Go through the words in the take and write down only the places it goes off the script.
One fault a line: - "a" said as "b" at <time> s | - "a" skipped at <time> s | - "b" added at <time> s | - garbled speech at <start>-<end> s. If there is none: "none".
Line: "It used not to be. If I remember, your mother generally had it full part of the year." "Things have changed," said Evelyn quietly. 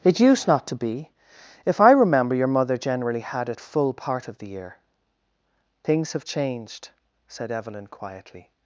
none